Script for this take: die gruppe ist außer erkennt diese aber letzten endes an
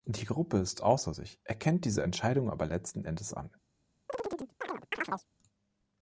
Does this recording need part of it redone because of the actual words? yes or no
yes